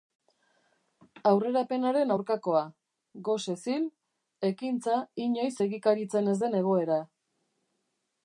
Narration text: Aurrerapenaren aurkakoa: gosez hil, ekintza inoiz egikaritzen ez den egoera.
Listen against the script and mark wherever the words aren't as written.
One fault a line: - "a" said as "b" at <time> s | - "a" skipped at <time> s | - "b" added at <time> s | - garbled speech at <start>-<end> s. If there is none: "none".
none